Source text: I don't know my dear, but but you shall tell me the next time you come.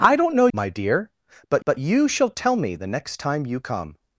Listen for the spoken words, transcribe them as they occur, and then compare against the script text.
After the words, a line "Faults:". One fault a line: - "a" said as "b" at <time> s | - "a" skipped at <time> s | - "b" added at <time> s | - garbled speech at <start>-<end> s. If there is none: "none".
I don't know my dear, but but you shall tell me the next time you come.
Faults:
none